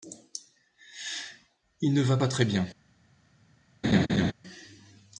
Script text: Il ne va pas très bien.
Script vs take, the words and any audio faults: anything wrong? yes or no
yes